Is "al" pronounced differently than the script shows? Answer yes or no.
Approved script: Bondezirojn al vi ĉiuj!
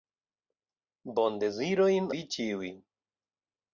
yes